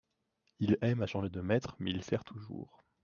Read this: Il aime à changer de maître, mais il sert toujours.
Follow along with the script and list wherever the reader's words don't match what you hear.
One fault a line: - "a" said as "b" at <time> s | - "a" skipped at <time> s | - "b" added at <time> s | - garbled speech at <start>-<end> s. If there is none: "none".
none